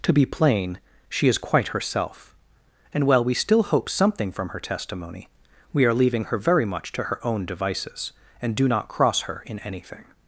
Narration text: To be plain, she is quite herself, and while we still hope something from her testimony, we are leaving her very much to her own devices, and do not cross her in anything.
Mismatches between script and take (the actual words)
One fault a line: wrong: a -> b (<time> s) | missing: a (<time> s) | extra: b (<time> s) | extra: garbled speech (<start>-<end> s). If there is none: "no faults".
no faults